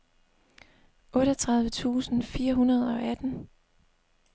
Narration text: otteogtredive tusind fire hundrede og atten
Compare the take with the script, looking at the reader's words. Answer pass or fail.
pass